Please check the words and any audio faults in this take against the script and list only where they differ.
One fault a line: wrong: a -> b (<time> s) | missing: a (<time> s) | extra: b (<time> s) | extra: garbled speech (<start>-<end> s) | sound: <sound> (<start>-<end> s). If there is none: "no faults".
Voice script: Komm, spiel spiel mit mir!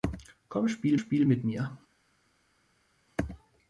no faults